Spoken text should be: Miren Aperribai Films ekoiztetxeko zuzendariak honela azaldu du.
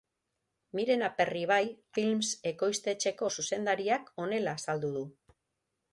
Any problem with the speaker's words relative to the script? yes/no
no